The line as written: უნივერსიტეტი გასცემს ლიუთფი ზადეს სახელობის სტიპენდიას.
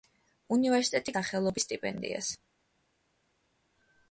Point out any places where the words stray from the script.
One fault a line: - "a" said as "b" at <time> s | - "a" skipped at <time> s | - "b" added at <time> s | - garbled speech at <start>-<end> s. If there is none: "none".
- "გასცემს ლიუთფი ზადეს" skipped at 1.1 s